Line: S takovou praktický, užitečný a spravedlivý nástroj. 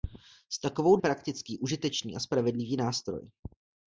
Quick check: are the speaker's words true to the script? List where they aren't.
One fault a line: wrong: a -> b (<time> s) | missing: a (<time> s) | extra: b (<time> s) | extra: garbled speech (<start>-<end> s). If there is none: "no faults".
no faults